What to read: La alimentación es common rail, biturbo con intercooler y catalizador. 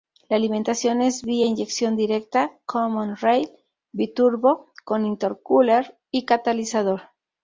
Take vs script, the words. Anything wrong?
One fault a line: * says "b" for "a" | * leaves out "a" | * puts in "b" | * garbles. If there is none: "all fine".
* puts in "vía inyección directa"